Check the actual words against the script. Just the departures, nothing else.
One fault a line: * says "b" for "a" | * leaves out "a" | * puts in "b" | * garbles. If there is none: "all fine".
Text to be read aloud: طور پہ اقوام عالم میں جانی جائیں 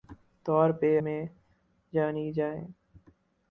* leaves out "اقوام عالم"